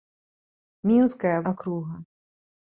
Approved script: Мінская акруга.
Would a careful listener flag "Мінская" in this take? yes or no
no